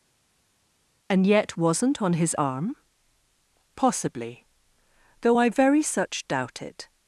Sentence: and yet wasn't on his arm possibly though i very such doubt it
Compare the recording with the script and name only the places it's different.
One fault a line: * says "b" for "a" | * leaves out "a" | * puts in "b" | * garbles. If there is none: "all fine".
all fine